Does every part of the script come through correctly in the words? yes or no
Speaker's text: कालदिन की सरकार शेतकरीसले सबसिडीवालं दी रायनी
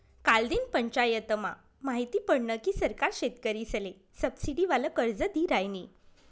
no